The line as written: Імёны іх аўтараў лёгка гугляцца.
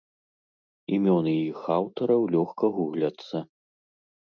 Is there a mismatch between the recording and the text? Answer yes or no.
no